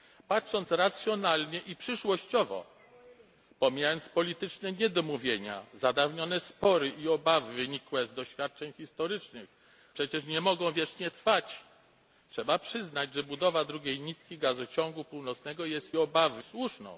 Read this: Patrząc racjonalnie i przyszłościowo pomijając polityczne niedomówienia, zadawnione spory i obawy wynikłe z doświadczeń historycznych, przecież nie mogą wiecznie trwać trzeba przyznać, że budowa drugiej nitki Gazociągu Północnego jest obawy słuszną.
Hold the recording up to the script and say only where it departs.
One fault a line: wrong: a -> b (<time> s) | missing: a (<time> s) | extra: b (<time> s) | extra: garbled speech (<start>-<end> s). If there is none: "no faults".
no faults